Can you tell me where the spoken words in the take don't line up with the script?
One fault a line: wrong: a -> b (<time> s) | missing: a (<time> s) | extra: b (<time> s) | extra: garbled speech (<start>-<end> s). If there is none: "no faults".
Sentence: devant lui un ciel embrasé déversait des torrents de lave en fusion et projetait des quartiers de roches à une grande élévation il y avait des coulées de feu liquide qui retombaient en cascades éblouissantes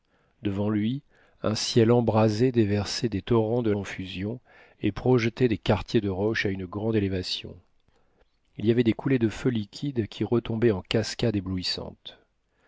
missing: lave (3.7 s)